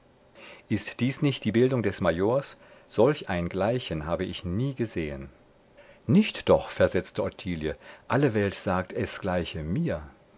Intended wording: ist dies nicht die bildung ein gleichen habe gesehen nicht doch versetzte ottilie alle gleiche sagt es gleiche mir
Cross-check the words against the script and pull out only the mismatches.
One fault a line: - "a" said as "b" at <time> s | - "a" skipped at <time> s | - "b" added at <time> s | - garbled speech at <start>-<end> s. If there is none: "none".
- "des majors solch" added at 1.8 s
- "ich nie" added at 4.3 s
- "gleiche" said as "welt" at 8.4 s